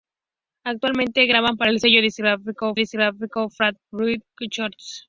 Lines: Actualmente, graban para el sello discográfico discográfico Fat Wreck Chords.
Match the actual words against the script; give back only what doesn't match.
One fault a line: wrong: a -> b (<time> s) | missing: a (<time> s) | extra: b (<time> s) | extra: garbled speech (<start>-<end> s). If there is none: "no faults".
no faults